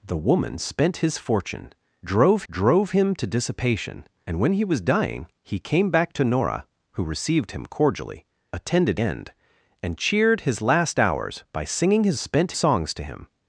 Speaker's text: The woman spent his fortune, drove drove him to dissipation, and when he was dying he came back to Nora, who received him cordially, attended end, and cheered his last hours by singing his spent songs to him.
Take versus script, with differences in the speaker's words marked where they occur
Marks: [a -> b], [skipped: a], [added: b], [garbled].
The woman spent his fortune, drove drove him to dissipation, and when he was dying he came back to Nora, who received him cordially, attended end, and cheered his last hours by singing his spent songs to him.